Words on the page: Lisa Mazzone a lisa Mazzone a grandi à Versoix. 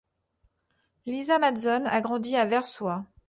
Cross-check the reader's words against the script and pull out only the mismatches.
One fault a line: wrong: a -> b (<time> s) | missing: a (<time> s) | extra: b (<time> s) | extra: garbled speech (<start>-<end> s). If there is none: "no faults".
missing: lisa Mazzone a (2.0 s)